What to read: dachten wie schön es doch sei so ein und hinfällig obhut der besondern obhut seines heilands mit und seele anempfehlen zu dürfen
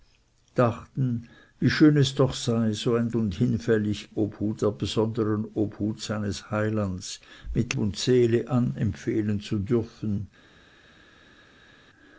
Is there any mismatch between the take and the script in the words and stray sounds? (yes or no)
no